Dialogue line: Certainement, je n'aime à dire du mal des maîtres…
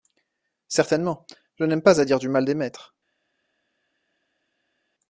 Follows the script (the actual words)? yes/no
no